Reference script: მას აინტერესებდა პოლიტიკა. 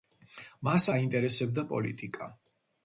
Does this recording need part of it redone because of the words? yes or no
no